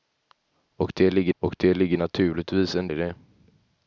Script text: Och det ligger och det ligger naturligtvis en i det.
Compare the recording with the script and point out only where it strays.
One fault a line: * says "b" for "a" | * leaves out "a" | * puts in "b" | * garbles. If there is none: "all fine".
all fine